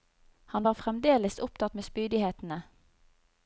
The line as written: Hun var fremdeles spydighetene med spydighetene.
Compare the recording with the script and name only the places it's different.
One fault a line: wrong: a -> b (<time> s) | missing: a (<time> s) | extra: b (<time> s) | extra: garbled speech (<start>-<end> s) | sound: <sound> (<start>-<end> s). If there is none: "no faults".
wrong: Hun -> Han (0.5 s)
wrong: spydighetene -> opptatt (1.4 s)